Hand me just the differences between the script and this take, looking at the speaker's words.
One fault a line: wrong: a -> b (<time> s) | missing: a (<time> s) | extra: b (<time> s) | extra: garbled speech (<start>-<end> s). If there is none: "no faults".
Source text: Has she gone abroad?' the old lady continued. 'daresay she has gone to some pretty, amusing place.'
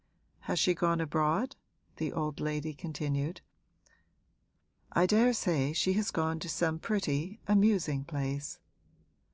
extra: I (4.9 s)